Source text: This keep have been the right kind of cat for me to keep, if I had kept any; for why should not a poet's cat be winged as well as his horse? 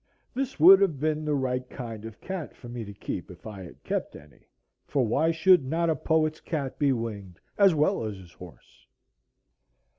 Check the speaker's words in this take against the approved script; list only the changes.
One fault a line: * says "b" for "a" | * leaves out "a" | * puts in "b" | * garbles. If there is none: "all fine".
* says "would" for "keep"